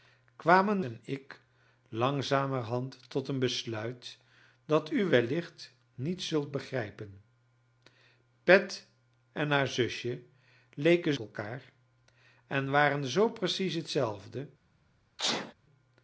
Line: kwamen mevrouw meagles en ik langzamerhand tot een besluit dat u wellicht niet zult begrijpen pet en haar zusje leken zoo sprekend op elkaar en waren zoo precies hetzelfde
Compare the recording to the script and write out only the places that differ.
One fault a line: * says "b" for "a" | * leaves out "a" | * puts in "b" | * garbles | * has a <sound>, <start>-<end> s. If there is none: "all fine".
* leaves out "mevrouw meagles"
* leaves out "zoo sprekend op"
* has a sneeze, 15.2-15.5 s